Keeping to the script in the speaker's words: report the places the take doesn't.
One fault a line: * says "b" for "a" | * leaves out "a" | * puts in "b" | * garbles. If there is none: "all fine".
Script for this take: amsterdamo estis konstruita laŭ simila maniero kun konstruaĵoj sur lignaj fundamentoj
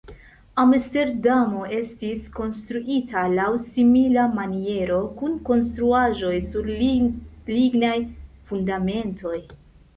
all fine